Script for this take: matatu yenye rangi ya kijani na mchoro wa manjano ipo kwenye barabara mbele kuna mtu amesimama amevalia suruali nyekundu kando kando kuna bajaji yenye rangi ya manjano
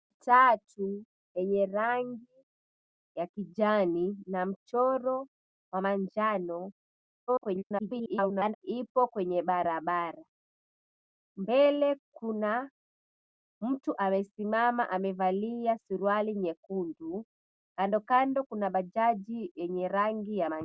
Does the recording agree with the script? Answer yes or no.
no